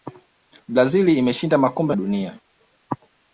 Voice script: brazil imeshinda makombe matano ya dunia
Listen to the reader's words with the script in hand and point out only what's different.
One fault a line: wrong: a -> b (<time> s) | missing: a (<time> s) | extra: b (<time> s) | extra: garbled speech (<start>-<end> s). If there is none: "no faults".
missing: matano (1.9 s)